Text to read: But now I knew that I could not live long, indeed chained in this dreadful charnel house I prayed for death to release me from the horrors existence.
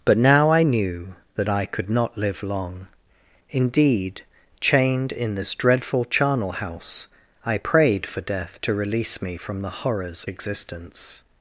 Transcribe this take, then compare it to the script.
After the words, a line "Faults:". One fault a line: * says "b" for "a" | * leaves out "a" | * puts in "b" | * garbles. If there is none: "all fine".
But now I knew that I could not live long, indeed chained in this dreadful charnel house I prayed for death to release me from the horrors existence.
Faults:
all fine